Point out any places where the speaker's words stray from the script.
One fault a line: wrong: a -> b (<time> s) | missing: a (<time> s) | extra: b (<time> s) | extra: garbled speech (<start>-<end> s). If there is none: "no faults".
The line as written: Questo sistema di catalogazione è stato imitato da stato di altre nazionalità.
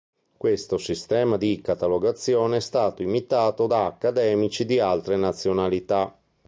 wrong: stato -> accademici (3.9 s)